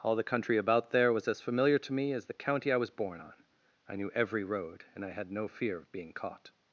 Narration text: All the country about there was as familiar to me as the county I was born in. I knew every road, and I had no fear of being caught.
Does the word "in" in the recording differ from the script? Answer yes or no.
yes